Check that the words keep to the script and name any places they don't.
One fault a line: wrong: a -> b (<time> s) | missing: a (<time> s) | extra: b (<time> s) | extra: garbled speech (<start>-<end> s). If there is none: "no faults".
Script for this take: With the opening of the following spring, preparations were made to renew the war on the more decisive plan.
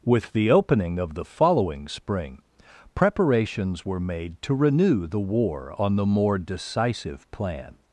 no faults